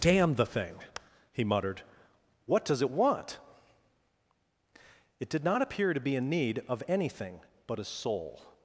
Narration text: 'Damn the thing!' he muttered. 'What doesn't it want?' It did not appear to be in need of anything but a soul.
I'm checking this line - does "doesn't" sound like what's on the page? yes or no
no